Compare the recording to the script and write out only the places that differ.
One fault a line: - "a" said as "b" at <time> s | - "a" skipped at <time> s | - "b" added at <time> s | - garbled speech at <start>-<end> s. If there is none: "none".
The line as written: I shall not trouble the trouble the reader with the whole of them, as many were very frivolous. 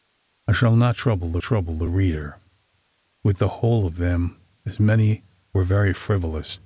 none